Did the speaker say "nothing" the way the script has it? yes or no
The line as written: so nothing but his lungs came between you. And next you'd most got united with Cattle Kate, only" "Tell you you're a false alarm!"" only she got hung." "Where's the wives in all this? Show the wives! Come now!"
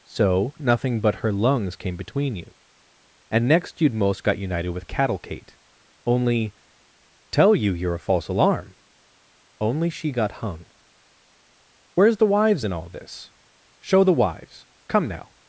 yes